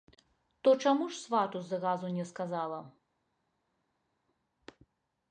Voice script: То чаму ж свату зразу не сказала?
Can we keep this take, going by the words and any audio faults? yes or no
yes